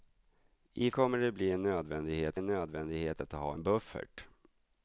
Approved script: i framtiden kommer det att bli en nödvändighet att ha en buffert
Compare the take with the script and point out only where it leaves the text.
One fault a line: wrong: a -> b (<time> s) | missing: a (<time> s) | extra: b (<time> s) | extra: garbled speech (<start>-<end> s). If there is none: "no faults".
missing: framtiden (0.9 s)
extra: en nödvändighet (2.4 s)